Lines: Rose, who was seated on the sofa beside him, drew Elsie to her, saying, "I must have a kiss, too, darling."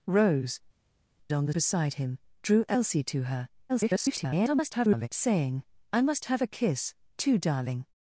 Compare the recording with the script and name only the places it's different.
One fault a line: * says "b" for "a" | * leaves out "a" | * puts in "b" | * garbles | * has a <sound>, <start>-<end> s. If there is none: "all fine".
* leaves out "who was seated"
* leaves out "sofa"
* garbles